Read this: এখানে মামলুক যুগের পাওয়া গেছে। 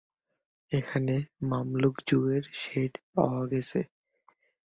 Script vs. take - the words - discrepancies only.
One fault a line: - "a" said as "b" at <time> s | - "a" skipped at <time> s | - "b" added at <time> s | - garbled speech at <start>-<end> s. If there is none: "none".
- "শেড" added at 2.6 s